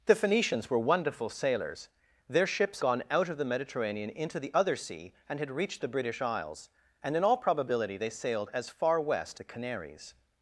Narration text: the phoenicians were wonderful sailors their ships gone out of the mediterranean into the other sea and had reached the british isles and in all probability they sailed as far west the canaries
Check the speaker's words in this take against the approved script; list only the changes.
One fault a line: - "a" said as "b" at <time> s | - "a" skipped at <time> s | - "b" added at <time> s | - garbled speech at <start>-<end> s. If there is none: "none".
none